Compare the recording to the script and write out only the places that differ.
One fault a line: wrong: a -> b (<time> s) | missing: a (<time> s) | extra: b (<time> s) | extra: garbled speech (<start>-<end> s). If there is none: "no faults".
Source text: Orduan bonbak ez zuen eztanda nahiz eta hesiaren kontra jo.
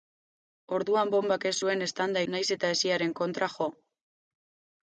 no faults